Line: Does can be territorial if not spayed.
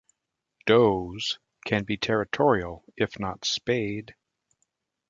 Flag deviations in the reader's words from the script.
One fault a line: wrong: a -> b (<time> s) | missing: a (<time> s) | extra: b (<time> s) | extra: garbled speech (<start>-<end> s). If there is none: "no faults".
no faults